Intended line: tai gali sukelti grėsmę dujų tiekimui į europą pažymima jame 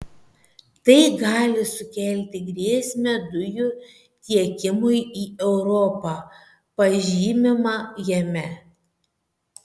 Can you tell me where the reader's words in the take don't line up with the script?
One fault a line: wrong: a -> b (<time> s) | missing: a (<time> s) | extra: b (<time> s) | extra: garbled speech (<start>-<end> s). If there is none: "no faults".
no faults